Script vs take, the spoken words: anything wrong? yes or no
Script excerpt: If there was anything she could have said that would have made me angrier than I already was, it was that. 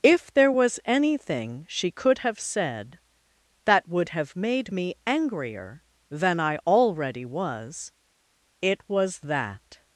no